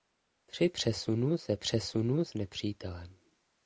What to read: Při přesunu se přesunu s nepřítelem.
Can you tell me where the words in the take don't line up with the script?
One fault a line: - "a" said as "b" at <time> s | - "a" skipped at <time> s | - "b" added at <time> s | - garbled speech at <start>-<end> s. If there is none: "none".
none